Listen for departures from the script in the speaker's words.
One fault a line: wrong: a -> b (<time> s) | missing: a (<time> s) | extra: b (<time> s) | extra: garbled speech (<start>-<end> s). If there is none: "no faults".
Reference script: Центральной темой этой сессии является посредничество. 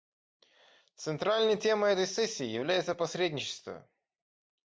no faults